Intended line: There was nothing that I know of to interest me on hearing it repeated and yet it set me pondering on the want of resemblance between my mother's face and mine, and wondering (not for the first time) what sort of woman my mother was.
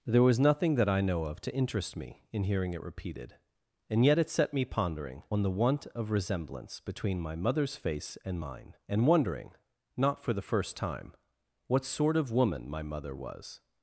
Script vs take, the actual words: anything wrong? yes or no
yes